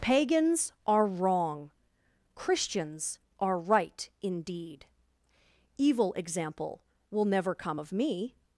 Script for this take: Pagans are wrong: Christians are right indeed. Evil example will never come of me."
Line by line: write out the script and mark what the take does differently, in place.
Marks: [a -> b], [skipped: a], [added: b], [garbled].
Pagans are wrong: Christians are right indeed. Evil example will never come of me."